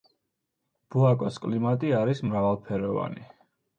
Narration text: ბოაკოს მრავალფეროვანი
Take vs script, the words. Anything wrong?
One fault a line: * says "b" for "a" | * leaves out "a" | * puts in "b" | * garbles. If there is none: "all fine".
* puts in "კლიმატი არის"